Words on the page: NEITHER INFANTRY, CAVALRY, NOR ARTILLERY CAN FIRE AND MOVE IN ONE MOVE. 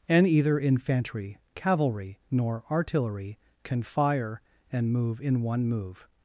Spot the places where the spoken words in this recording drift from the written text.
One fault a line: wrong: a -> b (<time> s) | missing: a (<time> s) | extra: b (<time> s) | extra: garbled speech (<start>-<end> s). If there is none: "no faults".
wrong: NEITHER -> And either (0.1 s)